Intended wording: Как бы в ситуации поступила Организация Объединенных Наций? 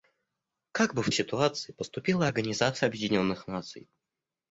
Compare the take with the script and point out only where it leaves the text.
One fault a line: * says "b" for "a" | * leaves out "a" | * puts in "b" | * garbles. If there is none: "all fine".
all fine